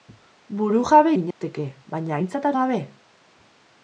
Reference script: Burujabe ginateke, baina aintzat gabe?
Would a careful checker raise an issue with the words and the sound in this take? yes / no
yes